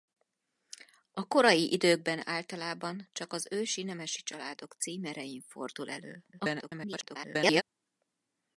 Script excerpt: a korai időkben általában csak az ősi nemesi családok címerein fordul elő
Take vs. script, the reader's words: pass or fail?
fail